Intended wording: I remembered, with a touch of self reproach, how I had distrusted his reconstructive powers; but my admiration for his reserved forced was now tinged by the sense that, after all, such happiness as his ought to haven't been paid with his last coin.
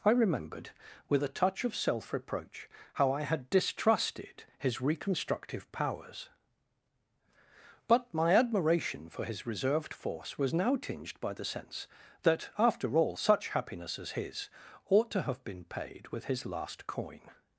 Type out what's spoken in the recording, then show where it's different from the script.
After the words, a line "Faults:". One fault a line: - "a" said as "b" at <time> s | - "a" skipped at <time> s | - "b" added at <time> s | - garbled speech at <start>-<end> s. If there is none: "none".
I remembered, with a touch of self reproach, how I had distrusted his reconstructive powers; but my admiration for his reserved force was now tinged by the sense that, after all, such happiness as his ought to have been paid with his last coin.
Faults:
- "forced" said as "force" at 9.9 s
- "haven't" said as "have" at 15.2 s